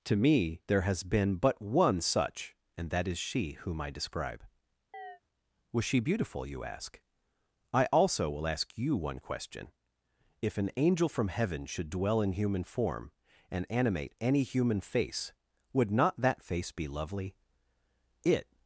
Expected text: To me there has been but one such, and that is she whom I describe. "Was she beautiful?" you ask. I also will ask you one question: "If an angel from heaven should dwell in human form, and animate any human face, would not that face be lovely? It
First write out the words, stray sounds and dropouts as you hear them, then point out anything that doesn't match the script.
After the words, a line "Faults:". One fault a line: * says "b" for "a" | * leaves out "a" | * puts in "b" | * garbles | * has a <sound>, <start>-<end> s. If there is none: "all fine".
To me there has been but one such, and that is she whom I describe. "Was she beautiful?" you ask. I also will ask you one question: "If an angel from heaven should dwell in human form, and animate any human face, would not that face be lovely? It
Faults:
* has a chirp, 4.9-5.2 s